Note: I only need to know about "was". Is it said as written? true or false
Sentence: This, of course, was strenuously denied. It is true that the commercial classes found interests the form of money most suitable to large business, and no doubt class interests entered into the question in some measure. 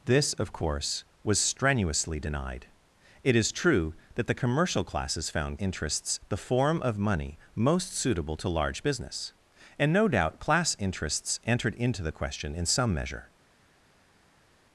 true